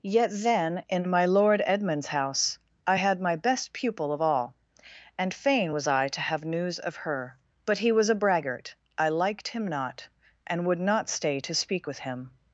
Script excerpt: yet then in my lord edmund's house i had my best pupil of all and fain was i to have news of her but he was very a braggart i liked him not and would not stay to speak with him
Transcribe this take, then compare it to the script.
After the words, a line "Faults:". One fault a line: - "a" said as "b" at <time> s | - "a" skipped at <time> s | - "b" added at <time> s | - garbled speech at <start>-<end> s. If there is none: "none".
yet then in my lord edmund's house i had my best pupil of all and fain was i to have news of her but he was a braggart i liked him not and would not stay to speak with him
Faults:
- "very" skipped at 8.1 s